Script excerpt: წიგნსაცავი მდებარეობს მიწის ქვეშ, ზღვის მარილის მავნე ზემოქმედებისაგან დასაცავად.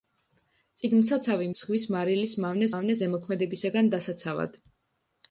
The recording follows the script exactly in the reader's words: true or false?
false